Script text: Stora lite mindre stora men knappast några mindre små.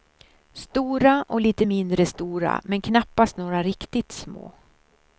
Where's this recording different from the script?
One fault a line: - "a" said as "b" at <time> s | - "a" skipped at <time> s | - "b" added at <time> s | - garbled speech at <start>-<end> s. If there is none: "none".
- "och" added at 1.3 s
- "mindre" said as "riktigt" at 3.6 s